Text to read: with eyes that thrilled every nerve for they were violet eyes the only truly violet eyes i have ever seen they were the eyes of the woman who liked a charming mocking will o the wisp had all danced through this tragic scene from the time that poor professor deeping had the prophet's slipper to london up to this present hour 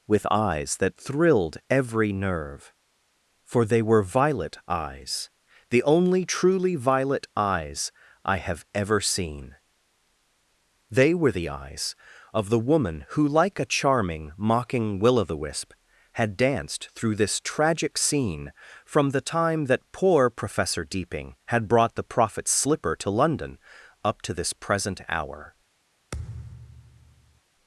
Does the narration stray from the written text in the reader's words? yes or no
yes